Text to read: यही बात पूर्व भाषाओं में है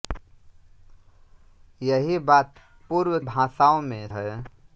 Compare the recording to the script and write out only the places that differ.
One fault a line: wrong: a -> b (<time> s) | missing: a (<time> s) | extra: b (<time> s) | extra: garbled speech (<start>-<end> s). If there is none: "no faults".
no faults